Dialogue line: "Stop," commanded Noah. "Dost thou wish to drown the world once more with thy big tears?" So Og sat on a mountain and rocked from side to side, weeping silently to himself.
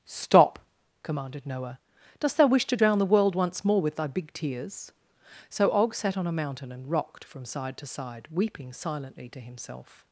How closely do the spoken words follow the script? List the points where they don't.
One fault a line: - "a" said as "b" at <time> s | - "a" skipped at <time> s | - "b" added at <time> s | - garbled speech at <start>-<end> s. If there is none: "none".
none